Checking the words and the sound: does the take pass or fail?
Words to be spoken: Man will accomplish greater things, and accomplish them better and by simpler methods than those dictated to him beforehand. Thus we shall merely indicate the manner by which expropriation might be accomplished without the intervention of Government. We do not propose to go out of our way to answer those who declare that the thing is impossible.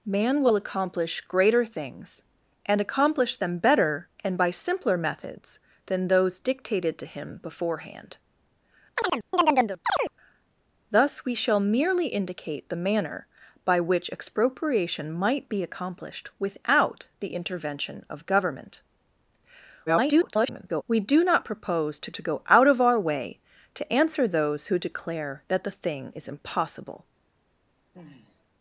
fail